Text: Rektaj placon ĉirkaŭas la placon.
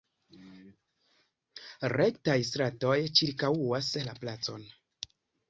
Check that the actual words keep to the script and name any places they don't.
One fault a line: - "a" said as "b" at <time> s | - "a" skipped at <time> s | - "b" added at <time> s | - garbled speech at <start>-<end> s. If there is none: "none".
- "placon" said as "stratoj" at 2.5 s